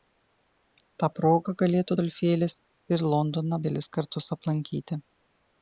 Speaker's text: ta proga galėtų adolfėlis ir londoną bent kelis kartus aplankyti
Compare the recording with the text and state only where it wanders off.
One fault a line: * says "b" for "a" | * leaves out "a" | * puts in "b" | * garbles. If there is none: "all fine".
* leaves out "bent"